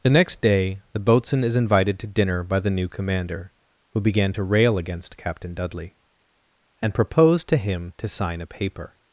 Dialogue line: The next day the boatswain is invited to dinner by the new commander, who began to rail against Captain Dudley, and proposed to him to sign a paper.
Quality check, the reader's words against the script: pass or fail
pass